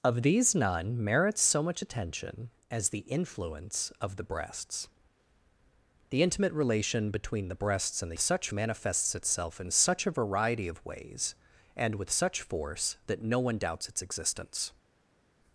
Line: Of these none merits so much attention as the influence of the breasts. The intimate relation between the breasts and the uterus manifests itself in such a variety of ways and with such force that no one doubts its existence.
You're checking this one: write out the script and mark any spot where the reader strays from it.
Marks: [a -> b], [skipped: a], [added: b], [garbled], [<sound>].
Of these none merits so much attention as the influence of the breasts. The intimate relation between the breasts and the [uterus -> such] manifests itself in such a variety of ways and with such force that no one doubts its existence.